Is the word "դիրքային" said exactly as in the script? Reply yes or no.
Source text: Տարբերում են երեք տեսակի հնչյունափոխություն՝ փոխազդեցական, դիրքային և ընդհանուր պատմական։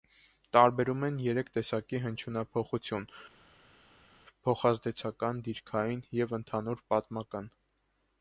yes